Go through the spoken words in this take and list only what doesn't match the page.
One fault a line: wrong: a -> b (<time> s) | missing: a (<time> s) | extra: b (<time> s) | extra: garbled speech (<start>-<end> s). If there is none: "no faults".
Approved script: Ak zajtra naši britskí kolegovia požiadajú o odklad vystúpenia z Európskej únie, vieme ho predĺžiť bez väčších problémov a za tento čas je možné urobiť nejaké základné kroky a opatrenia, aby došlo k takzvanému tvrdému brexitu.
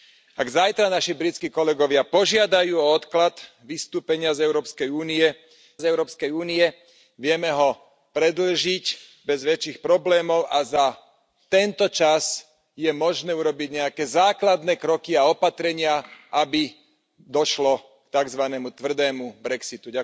extra: z Európskej únie (5.8 s)